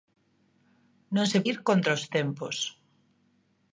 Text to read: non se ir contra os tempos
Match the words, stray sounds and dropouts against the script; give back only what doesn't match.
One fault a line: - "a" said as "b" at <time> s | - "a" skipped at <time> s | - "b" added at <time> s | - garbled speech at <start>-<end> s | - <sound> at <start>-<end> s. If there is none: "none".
none